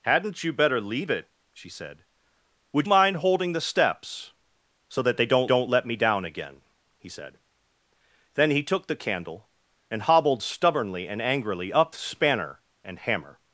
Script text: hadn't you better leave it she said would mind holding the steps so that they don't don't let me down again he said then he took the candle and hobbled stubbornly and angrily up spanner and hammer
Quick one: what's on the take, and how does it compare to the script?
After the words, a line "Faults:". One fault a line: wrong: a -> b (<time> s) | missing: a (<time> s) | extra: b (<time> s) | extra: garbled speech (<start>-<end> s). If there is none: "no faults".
hadn't you better leave it she said would mind holding the steps so that they don't don't let me down again he said then he took the candle and hobbled stubbornly and angrily up spanner and hammer
Faults:
no faults